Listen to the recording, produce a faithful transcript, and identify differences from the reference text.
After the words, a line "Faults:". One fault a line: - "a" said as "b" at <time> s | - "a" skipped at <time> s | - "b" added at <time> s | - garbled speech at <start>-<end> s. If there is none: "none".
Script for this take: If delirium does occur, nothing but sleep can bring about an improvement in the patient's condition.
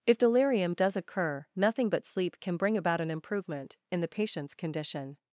If delirium does occur, nothing but sleep can bring about an improvement in the patient's condition.
Faults:
none